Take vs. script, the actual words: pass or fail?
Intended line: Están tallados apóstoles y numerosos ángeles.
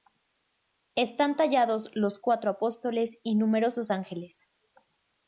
fail